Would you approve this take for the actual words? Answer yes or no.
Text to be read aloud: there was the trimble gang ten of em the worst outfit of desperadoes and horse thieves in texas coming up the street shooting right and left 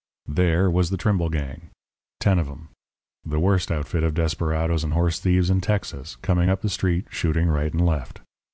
yes